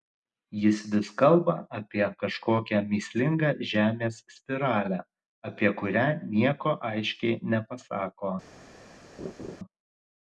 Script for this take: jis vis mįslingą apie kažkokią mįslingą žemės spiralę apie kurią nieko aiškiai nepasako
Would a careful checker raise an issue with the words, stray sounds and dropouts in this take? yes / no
yes